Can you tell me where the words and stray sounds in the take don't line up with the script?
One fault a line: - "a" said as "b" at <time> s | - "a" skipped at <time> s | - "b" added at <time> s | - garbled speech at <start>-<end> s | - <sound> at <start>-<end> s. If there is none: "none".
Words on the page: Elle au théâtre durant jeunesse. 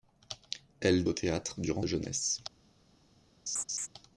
- laugh at 3.5-3.9 s